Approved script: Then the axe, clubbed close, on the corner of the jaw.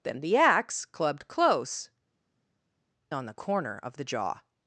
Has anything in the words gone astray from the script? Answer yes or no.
no